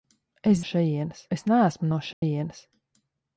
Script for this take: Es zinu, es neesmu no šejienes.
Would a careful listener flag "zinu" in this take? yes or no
yes